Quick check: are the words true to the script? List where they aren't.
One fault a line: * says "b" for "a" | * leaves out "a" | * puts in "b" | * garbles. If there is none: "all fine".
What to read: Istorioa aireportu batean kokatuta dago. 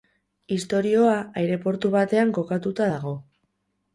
all fine